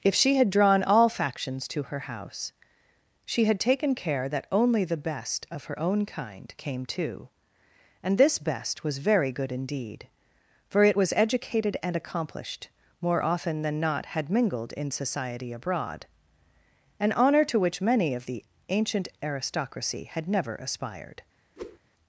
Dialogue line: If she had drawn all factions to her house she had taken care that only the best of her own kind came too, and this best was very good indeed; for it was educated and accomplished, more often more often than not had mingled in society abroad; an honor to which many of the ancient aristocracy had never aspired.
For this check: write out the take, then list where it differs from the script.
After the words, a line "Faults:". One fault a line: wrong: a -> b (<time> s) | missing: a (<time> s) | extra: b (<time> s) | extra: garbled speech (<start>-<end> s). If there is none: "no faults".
If she had drawn all factions to her house she had taken care that only the best of her own kind came too, and this best was very good indeed; for it was educated and accomplished, more often than not had mingled in society abroad; an honor to which many of the ancient aristocracy had never aspired.
Faults:
missing: more often (13.6 s)